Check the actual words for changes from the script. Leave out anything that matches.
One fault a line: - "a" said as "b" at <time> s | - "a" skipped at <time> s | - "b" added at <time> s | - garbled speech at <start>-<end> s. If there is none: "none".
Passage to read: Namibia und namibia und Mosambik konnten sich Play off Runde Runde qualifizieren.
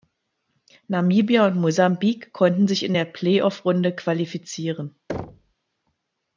- "namibia und" skipped at 1.6 s
- "in der" added at 2.8 s
- "Runde" skipped at 3.9 s